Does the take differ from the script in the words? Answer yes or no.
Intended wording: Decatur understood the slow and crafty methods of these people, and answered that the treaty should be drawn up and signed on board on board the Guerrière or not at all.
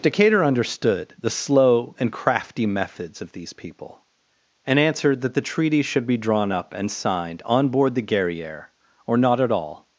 yes